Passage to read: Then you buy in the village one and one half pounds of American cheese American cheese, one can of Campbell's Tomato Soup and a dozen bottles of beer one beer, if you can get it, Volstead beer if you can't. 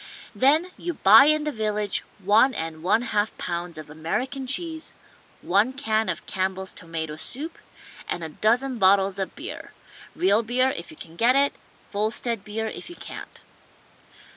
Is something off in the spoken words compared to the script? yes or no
yes